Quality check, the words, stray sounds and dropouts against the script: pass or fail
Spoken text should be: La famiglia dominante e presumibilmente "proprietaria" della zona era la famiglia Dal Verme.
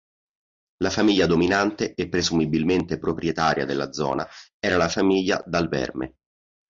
pass